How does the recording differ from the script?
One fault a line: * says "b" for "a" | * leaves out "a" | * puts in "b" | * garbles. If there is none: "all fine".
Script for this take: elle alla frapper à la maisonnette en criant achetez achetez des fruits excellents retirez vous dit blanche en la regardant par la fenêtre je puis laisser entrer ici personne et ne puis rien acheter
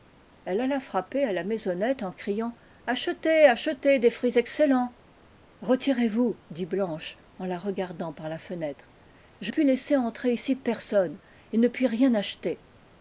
all fine